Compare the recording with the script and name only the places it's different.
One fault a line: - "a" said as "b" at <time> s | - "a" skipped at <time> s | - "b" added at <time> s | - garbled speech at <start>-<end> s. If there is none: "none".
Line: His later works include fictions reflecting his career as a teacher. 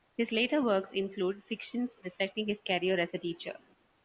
none